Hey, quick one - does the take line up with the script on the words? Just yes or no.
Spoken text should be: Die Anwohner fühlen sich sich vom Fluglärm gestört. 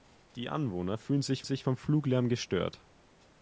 yes